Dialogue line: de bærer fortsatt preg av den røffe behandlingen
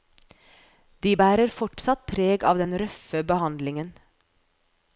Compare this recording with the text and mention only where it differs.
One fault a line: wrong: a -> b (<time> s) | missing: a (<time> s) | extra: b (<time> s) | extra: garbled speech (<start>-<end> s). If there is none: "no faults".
no faults